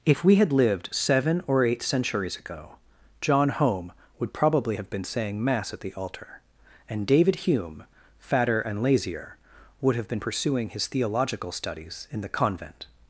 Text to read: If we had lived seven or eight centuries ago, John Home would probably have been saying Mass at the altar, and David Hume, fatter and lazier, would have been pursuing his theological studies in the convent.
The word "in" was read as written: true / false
true